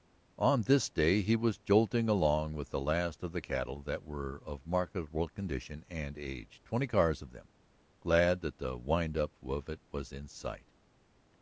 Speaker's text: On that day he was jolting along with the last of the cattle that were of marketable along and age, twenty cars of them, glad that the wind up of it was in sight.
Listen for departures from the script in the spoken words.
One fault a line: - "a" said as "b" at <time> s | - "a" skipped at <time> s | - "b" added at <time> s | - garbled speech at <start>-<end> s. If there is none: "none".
- "that" said as "this" at 0.6 s
- "along" said as "condition" at 5.3 s